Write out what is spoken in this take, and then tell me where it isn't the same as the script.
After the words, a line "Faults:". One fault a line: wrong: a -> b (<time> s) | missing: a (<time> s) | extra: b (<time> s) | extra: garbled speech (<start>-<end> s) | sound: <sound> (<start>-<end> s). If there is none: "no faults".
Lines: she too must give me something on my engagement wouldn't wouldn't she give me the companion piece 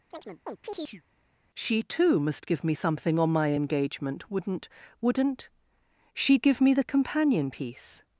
she too must give me something on my engagement wouldn't wouldn't she give me the companion piece
Faults:
sound: chirp (0.1-1.0 s)